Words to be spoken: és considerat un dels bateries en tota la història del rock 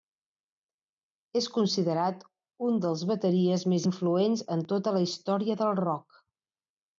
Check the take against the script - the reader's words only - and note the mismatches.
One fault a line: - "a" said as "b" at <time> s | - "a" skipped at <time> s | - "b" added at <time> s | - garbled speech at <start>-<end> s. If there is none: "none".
- "més influents" added at 3.8 s